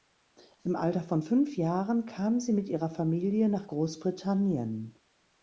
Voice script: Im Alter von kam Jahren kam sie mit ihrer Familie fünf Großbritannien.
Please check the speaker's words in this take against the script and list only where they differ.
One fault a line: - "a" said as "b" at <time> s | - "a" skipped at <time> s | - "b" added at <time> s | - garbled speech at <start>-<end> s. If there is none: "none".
- "kam" said as "fünf" at 1.2 s
- "fünf" said as "nach" at 3.5 s